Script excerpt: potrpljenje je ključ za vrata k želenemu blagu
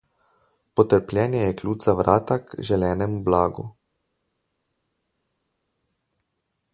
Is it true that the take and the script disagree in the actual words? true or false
false